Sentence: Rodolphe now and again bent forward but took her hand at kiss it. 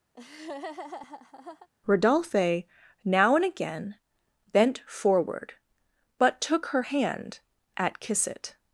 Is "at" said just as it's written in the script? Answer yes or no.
yes